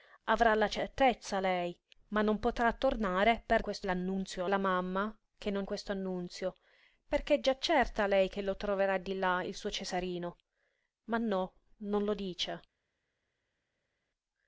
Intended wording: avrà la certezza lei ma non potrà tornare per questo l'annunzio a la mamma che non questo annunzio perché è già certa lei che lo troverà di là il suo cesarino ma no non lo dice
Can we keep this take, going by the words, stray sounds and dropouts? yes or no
yes